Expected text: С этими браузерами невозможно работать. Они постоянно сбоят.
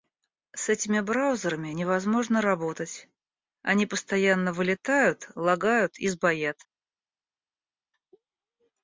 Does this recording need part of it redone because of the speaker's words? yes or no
yes